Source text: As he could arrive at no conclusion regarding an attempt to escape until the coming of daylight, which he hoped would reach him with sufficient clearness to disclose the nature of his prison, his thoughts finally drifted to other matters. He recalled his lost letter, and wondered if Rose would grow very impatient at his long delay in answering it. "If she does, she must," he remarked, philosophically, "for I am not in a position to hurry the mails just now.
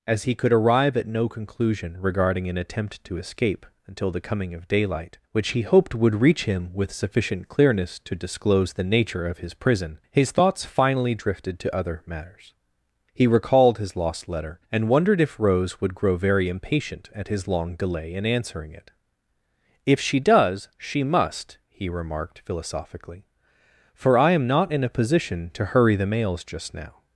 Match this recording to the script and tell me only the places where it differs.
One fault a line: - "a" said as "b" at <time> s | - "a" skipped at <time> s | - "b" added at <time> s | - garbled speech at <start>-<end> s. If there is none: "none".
none